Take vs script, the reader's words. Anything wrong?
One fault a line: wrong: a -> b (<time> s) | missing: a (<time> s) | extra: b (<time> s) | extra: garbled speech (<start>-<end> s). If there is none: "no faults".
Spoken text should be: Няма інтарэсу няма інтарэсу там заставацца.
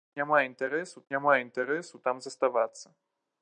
no faults